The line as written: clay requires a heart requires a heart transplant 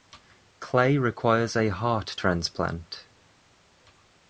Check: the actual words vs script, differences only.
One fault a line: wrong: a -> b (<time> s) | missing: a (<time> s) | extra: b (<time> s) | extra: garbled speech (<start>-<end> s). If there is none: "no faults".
missing: requires a heart (2.1 s)